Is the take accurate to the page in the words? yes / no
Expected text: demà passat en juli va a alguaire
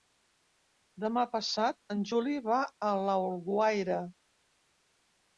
yes